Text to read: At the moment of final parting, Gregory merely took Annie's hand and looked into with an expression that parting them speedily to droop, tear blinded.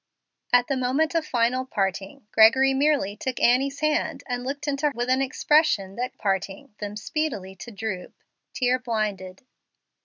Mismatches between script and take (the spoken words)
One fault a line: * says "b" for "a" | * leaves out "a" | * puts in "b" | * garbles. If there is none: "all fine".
all fine